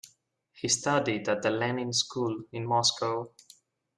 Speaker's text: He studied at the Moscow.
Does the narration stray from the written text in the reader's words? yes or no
yes